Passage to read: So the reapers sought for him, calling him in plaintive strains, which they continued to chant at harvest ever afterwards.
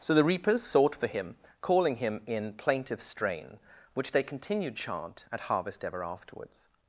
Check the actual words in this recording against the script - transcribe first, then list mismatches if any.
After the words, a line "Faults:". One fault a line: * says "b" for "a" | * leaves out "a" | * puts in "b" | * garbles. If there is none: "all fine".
So the reapers sought for him, calling him in plaintive strain, which they continued chant at harvest ever afterwards.
Faults:
* says "strain" for "strains"
* leaves out "to"